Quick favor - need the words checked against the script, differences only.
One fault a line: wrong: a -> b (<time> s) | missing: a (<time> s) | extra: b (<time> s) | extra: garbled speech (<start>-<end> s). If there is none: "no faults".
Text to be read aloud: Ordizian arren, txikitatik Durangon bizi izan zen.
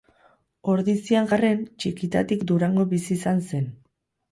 no faults